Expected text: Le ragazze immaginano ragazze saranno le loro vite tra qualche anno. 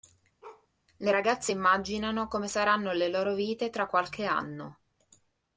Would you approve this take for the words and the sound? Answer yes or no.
no